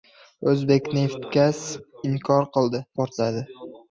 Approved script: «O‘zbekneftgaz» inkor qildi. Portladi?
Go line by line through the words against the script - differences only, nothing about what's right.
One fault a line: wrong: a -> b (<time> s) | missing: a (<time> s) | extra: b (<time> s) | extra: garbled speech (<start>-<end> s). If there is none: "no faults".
no faults